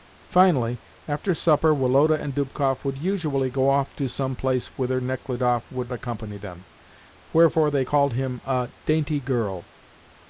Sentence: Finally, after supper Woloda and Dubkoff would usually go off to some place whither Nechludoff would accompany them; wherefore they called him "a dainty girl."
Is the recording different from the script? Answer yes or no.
no